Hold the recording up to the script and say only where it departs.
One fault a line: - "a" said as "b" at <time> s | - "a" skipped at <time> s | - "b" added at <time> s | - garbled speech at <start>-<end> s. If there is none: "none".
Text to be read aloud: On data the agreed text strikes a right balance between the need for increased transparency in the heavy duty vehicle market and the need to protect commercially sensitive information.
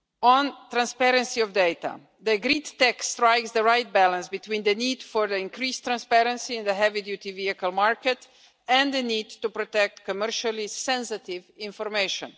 - "transparency of" added at 0.7 s
- "a" said as "the" at 3.5 s